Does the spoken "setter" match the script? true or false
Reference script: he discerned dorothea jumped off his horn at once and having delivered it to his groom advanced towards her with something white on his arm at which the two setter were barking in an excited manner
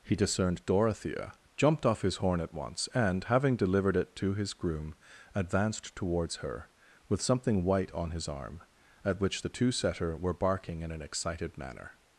true